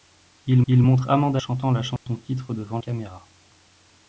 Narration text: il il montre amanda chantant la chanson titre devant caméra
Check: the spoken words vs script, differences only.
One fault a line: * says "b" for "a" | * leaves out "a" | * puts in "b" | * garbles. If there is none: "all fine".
all fine